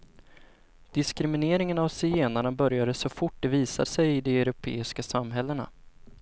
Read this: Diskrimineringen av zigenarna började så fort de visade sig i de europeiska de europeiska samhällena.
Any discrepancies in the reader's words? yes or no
yes